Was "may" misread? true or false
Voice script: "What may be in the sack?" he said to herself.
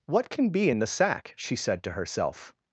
true